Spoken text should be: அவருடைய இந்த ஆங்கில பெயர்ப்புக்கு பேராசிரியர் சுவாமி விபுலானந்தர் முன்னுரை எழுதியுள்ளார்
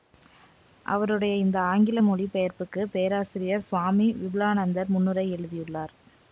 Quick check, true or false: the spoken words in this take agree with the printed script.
false